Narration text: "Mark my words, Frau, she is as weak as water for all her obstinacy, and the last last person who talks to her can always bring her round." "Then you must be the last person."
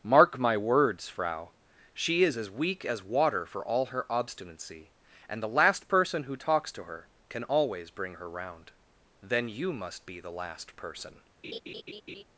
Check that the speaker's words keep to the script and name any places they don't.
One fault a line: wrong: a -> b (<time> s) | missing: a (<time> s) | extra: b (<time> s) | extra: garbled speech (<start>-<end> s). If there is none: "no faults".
missing: last (5.9 s)